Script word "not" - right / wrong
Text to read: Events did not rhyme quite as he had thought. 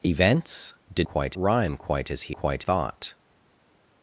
wrong